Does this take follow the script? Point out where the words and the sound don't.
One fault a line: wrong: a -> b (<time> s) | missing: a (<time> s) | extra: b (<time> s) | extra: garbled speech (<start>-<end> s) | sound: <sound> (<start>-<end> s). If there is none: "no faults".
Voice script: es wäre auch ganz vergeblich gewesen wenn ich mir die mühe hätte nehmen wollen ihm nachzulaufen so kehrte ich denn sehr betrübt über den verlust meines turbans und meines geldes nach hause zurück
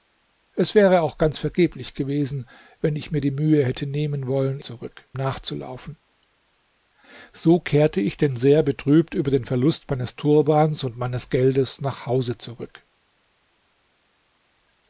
wrong: ihm -> zurück (4.6 s)